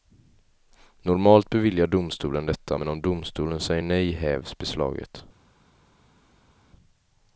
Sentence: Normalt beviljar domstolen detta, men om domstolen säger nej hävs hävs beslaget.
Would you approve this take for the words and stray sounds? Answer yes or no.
no